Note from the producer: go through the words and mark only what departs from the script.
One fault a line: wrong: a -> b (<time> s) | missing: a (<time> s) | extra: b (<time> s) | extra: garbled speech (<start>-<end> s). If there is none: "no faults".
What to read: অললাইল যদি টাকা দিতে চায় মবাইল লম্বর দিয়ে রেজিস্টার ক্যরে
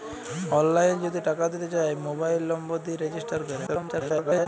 extra: garbled speech (3.7-4.5 s)